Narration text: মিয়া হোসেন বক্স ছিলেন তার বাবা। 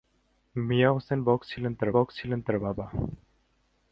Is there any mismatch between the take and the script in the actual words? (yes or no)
yes